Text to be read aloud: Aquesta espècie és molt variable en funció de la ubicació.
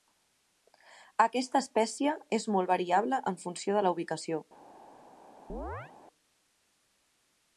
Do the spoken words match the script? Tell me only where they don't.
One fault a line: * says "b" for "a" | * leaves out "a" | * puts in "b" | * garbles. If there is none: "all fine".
all fine